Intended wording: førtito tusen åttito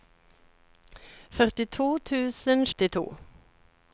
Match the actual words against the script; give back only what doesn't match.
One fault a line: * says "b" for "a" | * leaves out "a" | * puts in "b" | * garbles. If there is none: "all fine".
all fine